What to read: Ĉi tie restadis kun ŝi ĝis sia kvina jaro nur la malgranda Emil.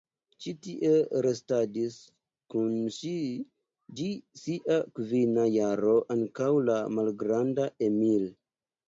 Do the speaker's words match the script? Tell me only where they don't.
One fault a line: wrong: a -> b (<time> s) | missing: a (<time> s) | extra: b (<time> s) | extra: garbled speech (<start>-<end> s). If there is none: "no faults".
wrong: nur -> ankaŭ (6.2 s)